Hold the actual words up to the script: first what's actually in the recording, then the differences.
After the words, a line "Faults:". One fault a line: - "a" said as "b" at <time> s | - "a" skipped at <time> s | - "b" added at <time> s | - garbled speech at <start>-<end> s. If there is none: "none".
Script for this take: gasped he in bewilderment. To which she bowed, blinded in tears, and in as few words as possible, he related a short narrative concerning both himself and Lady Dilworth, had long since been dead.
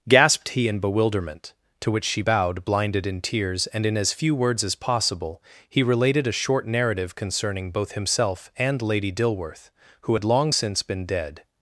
gasped he in bewilderment. To which she bowed, blinded in tears, and in as few words as possible, he related a short narrative concerning both himself and Lady Dilworth, who had long since been dead.
Faults:
- "who" added at 10.0 s